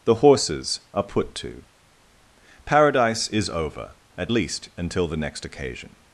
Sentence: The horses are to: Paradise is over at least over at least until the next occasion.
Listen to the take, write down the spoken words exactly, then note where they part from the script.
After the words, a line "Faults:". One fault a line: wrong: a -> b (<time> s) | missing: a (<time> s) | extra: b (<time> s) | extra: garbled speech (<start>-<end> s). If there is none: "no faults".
The horses are put to: Paradise is over at least until the next occasion.
Faults:
extra: put (1.0 s)
missing: over at least (4.7 s)